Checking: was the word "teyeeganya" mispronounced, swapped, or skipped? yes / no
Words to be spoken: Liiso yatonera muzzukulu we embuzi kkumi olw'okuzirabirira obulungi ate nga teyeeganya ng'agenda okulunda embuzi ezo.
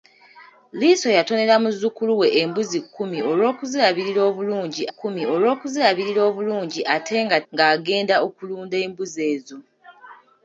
yes